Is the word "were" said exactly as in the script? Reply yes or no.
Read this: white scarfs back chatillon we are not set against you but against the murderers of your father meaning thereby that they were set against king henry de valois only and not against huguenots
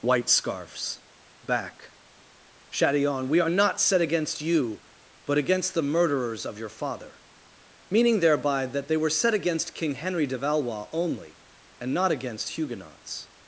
yes